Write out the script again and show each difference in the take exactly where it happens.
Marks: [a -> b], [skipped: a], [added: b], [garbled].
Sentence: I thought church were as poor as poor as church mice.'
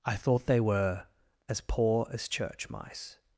I thought [church -> they] were as poor as [skipped: poor as] church mice.'